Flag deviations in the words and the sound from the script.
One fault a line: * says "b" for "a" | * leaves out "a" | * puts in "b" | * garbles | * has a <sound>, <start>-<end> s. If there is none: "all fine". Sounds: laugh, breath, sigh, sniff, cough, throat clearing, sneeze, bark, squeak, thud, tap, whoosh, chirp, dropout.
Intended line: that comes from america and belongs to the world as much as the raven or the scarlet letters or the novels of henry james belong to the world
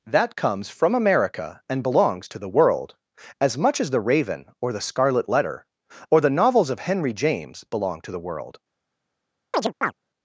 * says "letter" for "letters"
* has a chirp, 9.5-9.9 s